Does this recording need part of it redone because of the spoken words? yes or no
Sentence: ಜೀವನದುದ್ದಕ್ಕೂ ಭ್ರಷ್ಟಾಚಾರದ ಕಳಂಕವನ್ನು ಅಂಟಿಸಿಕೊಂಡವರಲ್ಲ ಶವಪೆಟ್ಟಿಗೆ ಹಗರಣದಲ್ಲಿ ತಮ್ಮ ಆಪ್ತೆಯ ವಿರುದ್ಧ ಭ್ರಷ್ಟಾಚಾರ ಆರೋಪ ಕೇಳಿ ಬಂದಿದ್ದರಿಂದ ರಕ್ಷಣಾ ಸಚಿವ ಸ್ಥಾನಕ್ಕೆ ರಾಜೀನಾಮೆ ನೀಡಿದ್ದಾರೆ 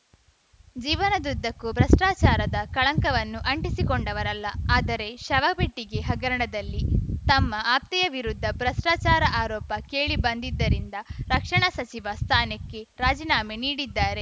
yes